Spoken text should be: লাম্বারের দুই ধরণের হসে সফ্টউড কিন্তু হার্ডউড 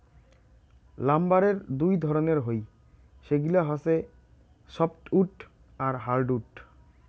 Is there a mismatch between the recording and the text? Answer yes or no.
yes